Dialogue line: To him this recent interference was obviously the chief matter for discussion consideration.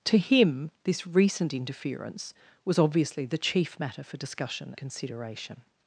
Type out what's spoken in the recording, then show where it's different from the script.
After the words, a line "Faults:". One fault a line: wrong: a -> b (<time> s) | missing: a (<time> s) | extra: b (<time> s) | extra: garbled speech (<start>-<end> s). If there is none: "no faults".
To him this recent interference was obviously the chief matter for discussion consideration.
Faults:
no faults